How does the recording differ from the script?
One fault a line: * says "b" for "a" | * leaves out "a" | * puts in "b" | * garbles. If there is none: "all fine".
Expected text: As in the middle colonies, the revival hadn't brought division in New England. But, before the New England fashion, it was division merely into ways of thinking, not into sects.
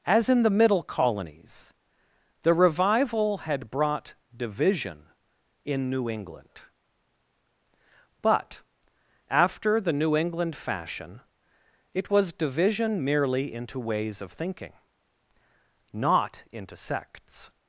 * says "had" for "hadn't"
* says "after" for "before"